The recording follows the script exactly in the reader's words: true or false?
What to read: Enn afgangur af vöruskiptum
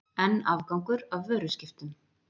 true